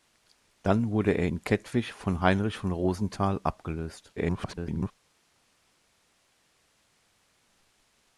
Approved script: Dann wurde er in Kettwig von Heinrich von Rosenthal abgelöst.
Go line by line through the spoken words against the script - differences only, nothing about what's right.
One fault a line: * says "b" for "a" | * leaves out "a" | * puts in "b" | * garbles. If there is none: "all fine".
* garbles